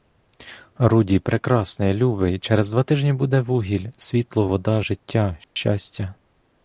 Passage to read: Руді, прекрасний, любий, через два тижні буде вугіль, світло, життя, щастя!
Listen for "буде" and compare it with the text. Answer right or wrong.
right